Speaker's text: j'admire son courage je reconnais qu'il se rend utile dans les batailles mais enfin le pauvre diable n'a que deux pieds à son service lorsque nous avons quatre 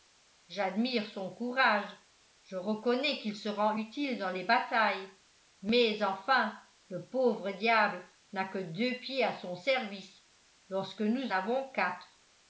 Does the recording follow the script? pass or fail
pass